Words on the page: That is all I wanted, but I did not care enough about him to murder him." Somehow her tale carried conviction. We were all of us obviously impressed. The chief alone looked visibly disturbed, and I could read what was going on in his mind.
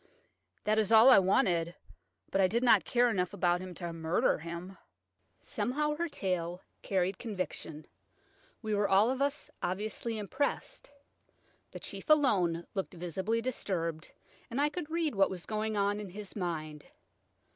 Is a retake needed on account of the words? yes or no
no